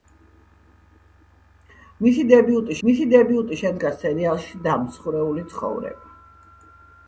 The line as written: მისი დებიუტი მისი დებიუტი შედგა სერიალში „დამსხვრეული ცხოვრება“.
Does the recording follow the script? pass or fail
pass